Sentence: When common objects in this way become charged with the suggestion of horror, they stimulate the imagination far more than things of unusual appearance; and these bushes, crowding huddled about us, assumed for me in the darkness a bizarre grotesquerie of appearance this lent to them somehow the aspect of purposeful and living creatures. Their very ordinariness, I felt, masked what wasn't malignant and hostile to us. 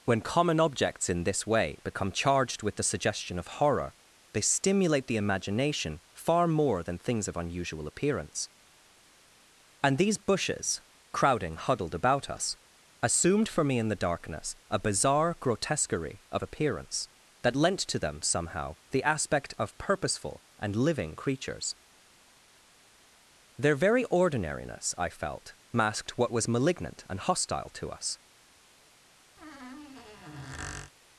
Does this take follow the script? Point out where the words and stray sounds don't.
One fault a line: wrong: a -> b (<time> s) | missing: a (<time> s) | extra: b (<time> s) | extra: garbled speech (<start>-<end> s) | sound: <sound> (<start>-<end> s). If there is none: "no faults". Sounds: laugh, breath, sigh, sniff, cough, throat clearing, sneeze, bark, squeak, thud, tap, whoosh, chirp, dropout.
wrong: this -> that (17.4 s)
wrong: wasn't -> was (26.3 s)
sound: squeak (29.4-30.9 s)